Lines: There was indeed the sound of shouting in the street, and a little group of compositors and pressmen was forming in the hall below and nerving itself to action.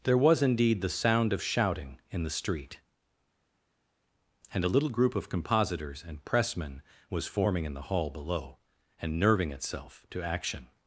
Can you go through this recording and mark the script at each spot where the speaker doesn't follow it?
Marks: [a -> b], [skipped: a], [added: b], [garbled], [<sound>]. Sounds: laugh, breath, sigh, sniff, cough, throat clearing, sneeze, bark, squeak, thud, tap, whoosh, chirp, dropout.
There was indeed the sound of shouting in the street, and a little group of compositors and pressmen was forming in the hall below and nerving itself to action.